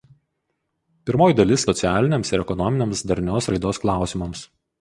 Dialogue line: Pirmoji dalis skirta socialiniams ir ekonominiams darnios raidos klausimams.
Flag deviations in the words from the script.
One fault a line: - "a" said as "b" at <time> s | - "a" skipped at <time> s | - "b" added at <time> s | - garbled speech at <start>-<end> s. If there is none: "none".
- "skirta" skipped at 1.6 s